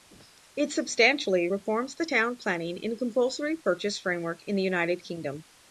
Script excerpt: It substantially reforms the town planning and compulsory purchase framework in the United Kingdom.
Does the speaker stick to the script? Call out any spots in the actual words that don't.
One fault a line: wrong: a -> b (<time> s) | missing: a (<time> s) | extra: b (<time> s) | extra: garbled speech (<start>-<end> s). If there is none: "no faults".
no faults